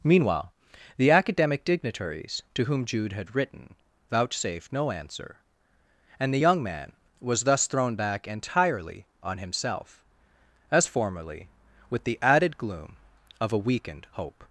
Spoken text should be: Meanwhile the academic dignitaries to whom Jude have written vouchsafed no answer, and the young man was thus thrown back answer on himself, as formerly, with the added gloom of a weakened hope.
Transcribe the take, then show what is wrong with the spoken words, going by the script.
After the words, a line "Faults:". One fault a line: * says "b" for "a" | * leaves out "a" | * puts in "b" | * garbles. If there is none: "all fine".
Meanwhile the academic dignitaries to whom Jude had written vouchsafed no answer, and the young man was thus thrown back entirely on himself, as formerly, with the added gloom of a weakened hope.
Faults:
* says "had" for "have"
* says "entirely" for "answer"